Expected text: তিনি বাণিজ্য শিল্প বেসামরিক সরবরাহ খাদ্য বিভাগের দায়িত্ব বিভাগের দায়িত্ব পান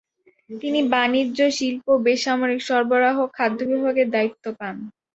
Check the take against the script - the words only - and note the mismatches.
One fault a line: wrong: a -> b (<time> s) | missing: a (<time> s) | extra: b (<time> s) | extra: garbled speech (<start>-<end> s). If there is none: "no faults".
missing: বিভাগের দায়িত্ব (4.4 s)